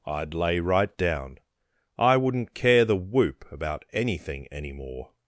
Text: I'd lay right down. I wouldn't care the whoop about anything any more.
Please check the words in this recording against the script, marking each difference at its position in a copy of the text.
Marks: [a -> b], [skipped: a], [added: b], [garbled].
I'd lay right down. I wouldn't care the whoop about anything any more.